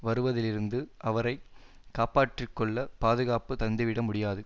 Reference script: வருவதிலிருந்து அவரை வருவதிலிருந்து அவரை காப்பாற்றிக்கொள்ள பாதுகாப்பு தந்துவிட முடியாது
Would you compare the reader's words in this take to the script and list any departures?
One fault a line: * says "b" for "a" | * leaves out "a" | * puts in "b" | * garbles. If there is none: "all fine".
* leaves out "வருவதிலிருந்து அவரை"